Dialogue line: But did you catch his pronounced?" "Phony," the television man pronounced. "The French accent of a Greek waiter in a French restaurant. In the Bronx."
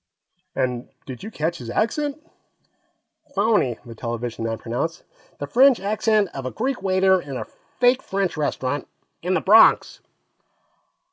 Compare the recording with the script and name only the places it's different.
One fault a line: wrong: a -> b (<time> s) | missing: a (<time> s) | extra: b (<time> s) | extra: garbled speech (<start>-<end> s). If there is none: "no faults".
wrong: But -> And (0.6 s)
wrong: pronounced -> accent (1.7 s)
extra: fake (7.8 s)